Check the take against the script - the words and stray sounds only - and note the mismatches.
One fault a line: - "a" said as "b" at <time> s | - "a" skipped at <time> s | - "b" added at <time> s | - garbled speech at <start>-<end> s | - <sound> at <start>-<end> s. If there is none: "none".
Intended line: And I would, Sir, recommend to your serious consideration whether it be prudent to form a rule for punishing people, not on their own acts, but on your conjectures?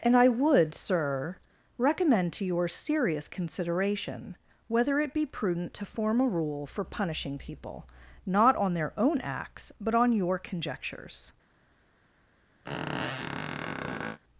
- squeak at 12.6-14.2 s